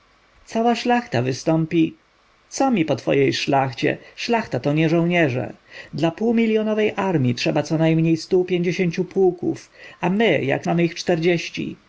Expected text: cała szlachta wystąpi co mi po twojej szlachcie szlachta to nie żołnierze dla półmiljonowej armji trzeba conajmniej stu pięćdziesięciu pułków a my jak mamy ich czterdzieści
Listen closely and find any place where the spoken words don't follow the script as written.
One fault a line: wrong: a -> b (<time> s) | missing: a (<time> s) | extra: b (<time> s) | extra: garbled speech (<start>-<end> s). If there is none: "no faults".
no faults